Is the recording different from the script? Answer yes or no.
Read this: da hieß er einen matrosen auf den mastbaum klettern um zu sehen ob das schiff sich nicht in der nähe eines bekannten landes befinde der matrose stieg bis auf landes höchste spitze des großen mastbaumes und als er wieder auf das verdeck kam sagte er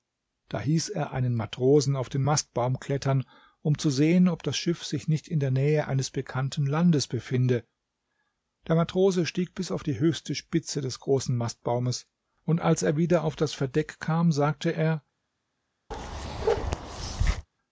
yes